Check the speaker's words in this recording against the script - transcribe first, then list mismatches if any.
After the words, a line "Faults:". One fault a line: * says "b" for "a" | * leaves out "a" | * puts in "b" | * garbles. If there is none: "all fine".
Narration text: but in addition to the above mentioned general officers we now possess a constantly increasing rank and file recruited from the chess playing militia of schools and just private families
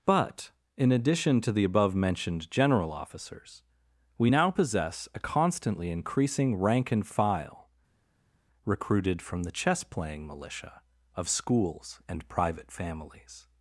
but in addition to the above mentioned general officers we now possess a constantly increasing rank and file recruited from the chess playing militia of schools and private families
Faults:
* leaves out "just"